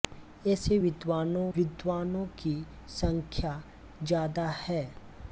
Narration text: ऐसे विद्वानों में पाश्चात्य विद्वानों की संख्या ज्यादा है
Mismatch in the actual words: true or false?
true